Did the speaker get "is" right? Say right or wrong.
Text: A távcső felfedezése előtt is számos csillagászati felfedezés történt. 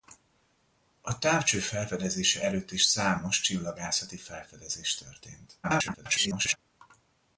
right